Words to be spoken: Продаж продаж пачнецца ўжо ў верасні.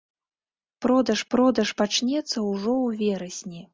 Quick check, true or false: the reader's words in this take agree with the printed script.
true